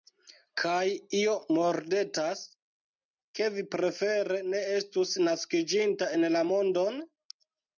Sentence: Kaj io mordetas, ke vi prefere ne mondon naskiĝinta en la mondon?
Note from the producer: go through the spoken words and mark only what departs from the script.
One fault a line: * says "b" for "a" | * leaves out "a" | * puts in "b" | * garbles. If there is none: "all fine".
* says "estus" for "mondon"